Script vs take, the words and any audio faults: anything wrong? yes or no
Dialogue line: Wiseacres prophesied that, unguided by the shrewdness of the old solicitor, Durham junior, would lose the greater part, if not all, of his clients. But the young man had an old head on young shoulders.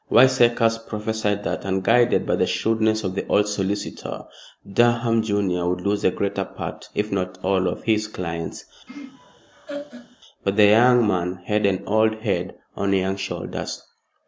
yes